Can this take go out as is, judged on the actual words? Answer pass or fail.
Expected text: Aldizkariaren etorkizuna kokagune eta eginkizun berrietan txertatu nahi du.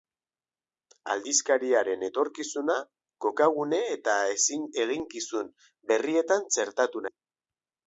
fail